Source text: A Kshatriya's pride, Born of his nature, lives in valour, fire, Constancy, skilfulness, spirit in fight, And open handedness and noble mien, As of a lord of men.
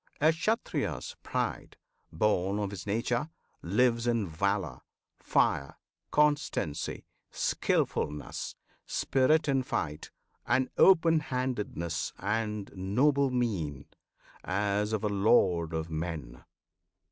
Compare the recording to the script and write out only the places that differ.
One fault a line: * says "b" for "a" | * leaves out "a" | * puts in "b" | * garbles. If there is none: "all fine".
all fine